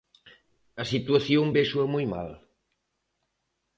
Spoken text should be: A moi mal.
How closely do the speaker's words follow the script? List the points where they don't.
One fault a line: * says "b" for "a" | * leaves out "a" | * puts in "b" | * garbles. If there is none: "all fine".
* puts in "situación véxoa"